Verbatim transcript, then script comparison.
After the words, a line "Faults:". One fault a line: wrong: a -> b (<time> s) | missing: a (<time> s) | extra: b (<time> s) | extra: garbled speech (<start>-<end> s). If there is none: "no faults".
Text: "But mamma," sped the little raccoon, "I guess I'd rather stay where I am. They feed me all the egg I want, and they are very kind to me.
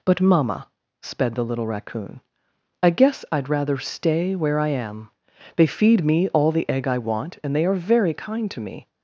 "But mamma," sped the little raccoon, "I guess I'd rather stay where I am. They feed me all the egg I want, and they are very kind to me.
Faults:
no faults